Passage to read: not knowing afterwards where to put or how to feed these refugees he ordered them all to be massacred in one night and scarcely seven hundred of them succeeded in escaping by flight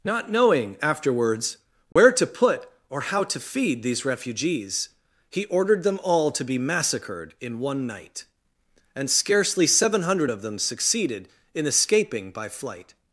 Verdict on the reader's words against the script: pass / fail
pass